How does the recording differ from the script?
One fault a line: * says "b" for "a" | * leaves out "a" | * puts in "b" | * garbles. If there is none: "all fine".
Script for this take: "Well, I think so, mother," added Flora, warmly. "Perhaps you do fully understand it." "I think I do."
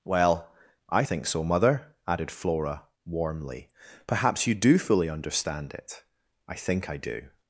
all fine